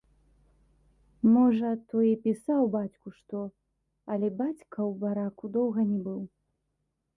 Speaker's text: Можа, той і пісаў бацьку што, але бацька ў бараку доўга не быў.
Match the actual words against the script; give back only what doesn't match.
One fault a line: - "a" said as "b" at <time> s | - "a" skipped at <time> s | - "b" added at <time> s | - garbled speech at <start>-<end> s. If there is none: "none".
none